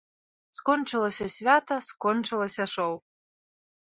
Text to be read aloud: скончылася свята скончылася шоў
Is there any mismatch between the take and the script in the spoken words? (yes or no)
no